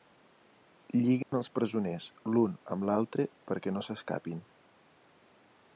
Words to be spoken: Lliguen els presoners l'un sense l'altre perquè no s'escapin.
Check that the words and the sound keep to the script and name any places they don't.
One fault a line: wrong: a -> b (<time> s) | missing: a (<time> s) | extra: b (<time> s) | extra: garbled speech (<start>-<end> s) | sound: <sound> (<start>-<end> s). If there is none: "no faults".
sound: dropout (1.2-1.3 s)
wrong: sense -> amb (2.8 s)